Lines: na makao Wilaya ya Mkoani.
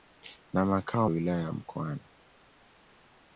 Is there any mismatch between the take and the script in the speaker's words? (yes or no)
no